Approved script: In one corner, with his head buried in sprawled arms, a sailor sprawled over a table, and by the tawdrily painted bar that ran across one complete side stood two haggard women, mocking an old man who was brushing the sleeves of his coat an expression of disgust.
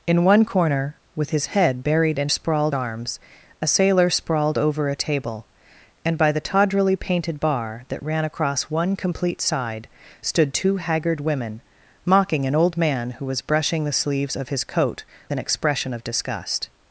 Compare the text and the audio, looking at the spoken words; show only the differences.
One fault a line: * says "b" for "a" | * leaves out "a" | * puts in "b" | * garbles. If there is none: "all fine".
all fine